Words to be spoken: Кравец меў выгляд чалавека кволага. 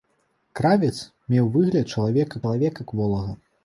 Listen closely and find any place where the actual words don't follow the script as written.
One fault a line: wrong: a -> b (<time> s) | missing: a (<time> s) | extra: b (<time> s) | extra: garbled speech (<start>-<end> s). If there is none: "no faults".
extra: чалавека (2.4 s)